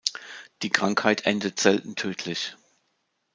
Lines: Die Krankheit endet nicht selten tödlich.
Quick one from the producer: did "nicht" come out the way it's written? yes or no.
no